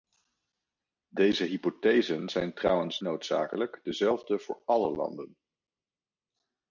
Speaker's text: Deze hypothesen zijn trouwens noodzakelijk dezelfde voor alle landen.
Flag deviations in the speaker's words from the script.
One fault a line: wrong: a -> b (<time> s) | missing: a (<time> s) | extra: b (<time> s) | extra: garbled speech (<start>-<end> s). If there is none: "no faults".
no faults